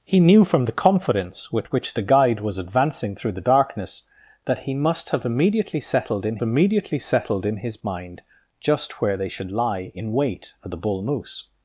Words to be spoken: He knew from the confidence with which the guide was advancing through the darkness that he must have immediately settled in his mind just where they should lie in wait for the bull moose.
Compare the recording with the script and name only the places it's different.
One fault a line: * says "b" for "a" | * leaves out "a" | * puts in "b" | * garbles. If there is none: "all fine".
* puts in "immediately settled in"